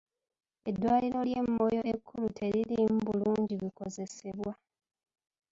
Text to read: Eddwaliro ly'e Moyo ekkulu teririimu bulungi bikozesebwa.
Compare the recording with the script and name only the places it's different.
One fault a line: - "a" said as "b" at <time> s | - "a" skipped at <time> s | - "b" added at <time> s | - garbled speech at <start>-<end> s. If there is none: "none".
none